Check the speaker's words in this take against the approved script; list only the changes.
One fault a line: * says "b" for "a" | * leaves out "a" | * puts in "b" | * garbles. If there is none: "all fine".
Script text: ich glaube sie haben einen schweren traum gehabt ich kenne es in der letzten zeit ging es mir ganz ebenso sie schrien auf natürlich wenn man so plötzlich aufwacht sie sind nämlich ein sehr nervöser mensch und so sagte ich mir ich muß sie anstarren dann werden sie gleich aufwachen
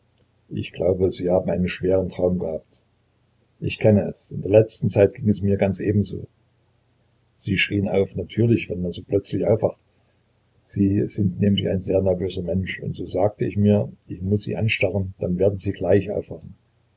all fine